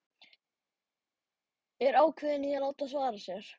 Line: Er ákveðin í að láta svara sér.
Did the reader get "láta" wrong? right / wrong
right